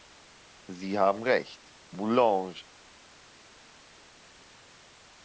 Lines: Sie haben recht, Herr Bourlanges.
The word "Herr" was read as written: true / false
false